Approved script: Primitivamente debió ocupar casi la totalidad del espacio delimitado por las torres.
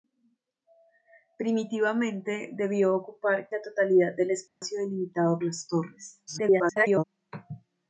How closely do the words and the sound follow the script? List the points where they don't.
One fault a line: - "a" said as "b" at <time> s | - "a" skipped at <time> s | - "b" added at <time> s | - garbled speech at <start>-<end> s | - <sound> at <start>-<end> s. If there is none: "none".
- "casi" skipped at 3.5 s
- dropout at 4.5-4.6 s
- "por" skipped at 5.4 s
- garbled speech at 6.3-7.0 s